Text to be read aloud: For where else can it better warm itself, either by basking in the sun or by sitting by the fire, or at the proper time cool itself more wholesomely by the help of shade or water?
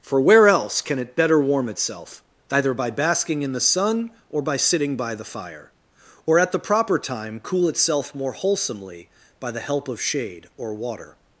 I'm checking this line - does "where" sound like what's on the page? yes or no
yes